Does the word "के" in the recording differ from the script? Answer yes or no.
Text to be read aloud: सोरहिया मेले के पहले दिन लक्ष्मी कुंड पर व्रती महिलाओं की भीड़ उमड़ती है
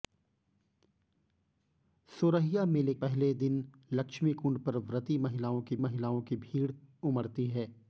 yes